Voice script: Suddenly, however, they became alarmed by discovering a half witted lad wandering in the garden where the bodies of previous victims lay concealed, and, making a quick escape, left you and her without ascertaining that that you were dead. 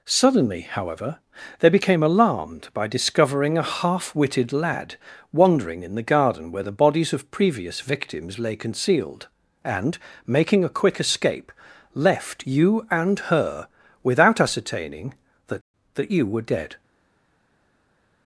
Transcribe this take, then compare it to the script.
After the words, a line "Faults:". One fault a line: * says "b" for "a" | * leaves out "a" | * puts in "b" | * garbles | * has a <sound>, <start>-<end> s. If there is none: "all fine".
Suddenly, however, they became alarmed by discovering a half witted lad wandering in the garden where the bodies of previous victims lay concealed, and, making a quick escape, left you and her without ascertaining that that you were dead.
Faults:
all fine